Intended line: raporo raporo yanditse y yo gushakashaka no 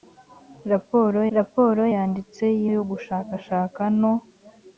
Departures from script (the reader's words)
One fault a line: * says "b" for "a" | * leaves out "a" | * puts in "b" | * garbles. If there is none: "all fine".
all fine